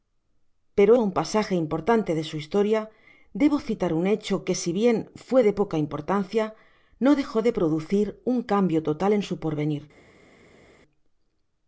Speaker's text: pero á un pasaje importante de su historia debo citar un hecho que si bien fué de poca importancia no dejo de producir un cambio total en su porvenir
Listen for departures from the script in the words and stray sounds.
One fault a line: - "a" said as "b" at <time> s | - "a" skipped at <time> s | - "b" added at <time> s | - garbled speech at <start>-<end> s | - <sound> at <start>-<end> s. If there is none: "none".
none